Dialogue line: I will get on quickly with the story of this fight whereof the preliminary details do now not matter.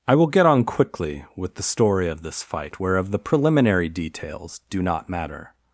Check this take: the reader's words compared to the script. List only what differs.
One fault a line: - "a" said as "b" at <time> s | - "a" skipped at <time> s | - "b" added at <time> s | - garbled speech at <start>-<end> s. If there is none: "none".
- "now" skipped at 4.8 s